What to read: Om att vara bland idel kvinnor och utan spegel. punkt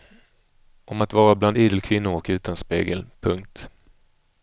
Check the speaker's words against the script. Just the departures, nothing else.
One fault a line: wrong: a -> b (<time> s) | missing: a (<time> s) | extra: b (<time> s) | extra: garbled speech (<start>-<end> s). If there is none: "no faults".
no faults